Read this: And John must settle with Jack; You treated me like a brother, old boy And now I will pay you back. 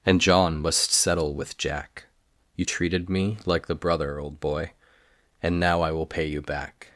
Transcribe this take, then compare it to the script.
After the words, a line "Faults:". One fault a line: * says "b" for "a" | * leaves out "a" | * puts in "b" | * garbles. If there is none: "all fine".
And John must settle with Jack; You treated me like the brother, old boy And now I will pay you back.
Faults:
* says "the" for "a"